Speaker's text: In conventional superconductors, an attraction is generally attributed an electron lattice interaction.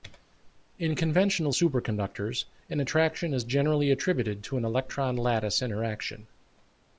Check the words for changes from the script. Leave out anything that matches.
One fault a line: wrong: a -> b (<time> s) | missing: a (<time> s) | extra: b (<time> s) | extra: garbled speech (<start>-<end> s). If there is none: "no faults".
extra: to (4.4 s)